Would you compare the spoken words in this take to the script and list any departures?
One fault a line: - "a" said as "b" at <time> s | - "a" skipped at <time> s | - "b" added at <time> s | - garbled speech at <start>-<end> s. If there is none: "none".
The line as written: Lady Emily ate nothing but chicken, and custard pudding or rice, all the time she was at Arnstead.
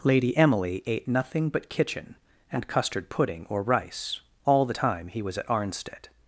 - "chicken" said as "kitchen" at 1.7 s
- "she" said as "he" at 5.1 s